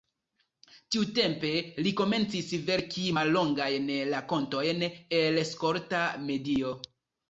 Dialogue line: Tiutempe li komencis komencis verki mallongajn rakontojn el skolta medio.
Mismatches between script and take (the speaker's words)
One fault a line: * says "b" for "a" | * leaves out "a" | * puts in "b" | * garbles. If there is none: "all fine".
* leaves out "komencis"